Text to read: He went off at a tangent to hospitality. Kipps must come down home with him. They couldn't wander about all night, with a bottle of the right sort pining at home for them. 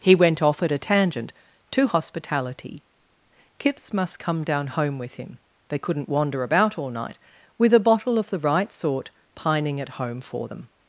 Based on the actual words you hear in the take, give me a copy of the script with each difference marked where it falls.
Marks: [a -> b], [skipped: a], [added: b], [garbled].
He went off at a tangent to hospitality. Kipps must come down home with him. They couldn't wander about all night, with a bottle of the right sort pining at home for them.